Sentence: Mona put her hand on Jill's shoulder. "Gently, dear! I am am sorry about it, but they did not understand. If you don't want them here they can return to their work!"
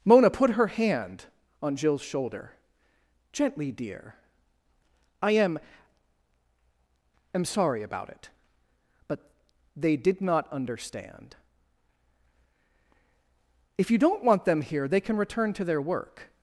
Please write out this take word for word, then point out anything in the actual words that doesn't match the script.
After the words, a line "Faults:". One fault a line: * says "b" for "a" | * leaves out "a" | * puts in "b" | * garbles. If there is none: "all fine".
Mona put her hand on Jill's shoulder. "Gently, dear! I am am sorry about it, but they did not understand. If you don't want them here they can return to their work!"
Faults:
all fine